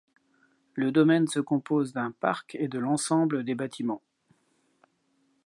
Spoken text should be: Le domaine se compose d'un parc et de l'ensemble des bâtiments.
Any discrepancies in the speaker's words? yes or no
no